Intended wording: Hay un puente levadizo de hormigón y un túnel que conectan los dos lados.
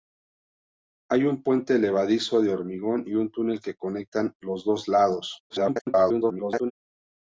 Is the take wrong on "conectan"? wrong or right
right